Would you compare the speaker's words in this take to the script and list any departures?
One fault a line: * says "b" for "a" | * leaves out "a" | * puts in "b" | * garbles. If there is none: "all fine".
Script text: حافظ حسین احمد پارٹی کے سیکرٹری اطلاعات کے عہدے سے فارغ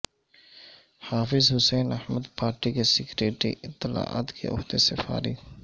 all fine